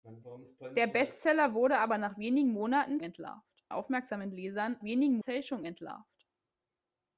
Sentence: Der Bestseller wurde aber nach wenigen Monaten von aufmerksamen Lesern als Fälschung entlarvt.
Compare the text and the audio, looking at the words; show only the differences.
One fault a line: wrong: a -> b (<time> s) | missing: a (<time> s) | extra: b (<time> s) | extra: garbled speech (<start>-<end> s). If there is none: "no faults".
wrong: von -> entlarvt (3.0 s)
wrong: als -> wenigen (4.8 s)